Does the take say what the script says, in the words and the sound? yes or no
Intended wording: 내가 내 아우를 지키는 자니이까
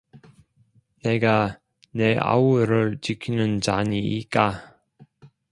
yes